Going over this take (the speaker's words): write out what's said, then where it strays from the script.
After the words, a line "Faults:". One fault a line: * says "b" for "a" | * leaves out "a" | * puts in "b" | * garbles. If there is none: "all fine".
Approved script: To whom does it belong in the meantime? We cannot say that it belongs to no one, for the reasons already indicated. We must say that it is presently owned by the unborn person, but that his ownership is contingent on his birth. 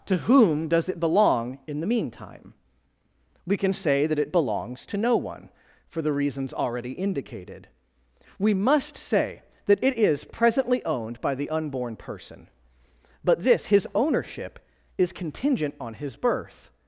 To whom does it belong in the meantime? We can say that it belongs to no one, for the reasons already indicated. We must say that it is presently owned by the unborn person, but this his ownership is contingent on his birth.
Faults:
* says "can" for "cannot"
* says "this" for "that"